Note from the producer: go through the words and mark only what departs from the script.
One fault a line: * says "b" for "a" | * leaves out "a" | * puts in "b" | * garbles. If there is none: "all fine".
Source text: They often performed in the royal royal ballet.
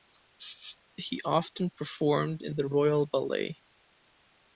* says "He" for "They"
* leaves out "royal"